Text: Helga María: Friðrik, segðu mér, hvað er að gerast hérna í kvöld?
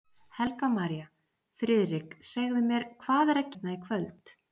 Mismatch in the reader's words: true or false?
true